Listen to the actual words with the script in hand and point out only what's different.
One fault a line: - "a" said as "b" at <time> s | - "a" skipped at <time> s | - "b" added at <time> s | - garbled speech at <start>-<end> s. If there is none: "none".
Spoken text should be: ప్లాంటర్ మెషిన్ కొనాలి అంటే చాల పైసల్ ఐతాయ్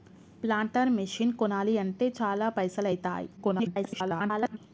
- garbled speech at 3.4-4.6 s